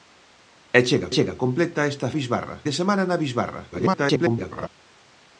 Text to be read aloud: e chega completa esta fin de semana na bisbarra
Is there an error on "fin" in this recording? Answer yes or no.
yes